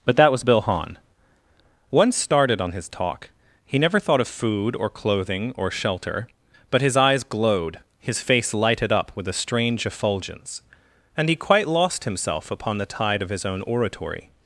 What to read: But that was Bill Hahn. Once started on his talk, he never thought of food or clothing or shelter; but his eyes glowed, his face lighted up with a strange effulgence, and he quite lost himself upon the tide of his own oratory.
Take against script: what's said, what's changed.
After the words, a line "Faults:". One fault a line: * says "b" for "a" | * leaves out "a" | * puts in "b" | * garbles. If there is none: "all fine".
But that was Bill Hahn. Once started on his talk, he never thought of food or clothing or shelter; but his eyes glowed, his face lighted up with a strange effulgence, and he quite lost himself upon the tide of his own oratory.
Faults:
all fine